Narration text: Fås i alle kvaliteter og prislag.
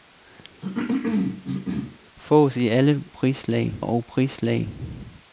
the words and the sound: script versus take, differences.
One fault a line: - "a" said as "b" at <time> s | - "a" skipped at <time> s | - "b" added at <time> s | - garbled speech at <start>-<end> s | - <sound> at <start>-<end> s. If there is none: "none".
- cough at 0.6-2.0 s
- "kvaliteter" said as "prislag" at 3.1 s